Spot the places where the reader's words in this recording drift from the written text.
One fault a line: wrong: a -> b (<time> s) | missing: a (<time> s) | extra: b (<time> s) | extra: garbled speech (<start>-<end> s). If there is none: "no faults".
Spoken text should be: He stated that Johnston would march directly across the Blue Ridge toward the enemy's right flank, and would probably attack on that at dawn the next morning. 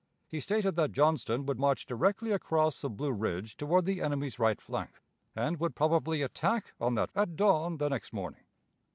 no faults